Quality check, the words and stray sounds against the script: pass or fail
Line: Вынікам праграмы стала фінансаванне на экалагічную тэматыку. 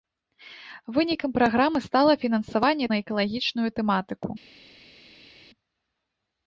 pass